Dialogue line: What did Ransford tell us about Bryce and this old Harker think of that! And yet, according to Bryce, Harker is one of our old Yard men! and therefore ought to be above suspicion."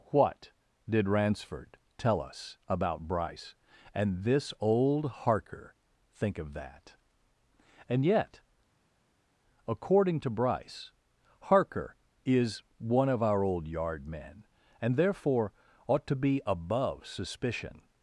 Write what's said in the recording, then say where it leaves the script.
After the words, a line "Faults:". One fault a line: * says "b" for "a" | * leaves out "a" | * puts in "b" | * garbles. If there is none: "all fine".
What did Ransford tell us about Bryce and this old Harker think of that! And yet, according to Bryce, Harker is one of our old Yard men! and therefore ought to be above suspicion."
Faults:
all fine